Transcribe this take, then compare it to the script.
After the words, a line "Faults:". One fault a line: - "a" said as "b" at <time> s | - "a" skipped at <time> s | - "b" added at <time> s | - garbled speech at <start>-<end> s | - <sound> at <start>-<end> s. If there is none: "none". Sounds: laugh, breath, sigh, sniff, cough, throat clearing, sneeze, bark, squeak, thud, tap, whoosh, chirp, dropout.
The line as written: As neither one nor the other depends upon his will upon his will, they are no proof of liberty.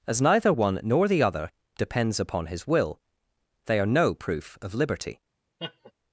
As neither one nor the other depends upon his will, they are no proof of liberty.
Faults:
- "upon his will" skipped at 3.0 s
- laugh at 5.6-5.9 s